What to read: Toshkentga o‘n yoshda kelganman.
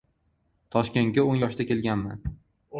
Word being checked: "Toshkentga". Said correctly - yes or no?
yes